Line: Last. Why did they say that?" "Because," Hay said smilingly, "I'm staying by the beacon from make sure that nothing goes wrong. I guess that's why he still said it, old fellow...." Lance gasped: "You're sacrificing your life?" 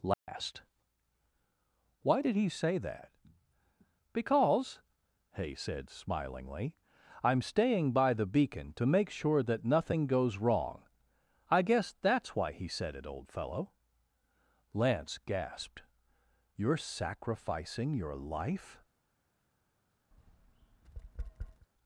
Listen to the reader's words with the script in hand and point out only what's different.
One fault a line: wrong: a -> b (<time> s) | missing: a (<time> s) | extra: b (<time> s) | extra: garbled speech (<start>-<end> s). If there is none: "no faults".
wrong: they -> he (2.4 s)
wrong: from -> to (8.7 s)
missing: still (12.7 s)